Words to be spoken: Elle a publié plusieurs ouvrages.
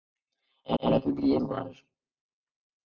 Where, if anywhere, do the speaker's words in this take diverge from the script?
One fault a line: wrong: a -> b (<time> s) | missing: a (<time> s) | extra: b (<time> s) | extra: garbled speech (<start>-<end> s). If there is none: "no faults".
extra: elle (0.8 s)
missing: plusieurs (1.4 s)